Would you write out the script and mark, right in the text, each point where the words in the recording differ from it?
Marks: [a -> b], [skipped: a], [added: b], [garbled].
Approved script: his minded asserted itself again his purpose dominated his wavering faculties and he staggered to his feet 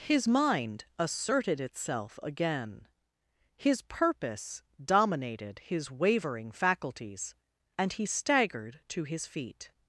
his [minded -> mind] asserted itself again his purpose dominated his wavering faculties and he staggered to his feet